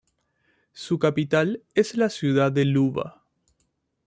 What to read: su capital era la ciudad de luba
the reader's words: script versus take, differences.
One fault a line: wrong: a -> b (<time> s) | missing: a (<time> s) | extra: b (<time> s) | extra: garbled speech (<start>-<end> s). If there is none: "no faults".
wrong: era -> es (1.8 s)